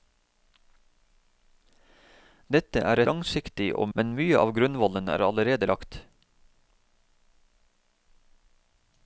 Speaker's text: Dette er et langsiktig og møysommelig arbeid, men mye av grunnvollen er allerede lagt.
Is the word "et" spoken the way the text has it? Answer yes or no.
no